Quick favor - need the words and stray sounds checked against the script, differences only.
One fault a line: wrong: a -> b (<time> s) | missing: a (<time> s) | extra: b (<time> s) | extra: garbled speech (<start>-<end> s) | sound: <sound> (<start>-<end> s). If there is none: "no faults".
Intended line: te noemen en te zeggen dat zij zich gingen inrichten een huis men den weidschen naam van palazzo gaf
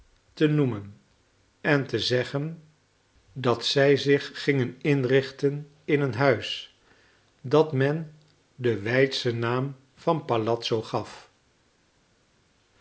extra: in (5.8 s)
extra: dat (7.4 s)